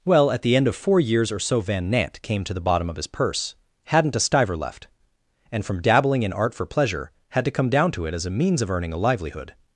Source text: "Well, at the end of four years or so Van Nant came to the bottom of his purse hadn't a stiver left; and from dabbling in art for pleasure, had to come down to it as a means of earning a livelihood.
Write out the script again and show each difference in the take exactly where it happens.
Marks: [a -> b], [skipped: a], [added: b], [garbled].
"Well, at the end of four years or so Van Nant came to the bottom of his purse hadn't a stiver left; and from dabbling in art for pleasure, had to come down to it as a means of earning a livelihood.